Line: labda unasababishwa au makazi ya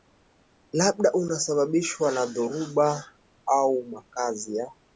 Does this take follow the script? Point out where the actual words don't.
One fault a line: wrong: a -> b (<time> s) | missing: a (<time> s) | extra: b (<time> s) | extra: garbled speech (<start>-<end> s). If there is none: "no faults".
extra: na dhoruba (2.1 s)